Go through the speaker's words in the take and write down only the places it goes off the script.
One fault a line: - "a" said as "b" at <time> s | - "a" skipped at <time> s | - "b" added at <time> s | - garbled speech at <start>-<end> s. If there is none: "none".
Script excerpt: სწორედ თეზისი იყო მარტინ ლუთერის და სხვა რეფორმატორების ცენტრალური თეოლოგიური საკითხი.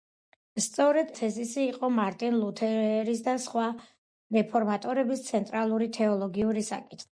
none